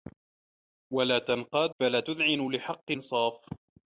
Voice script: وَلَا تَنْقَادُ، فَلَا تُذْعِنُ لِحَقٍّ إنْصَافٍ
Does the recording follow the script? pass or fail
pass